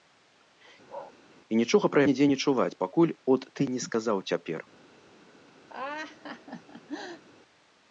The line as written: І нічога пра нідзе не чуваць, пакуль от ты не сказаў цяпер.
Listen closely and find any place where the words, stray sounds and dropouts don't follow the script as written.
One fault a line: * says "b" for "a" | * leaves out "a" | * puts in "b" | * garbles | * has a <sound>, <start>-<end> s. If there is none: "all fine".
* has a bark, 0.9-1.1 s
* has a laugh, 5.7-7.2 s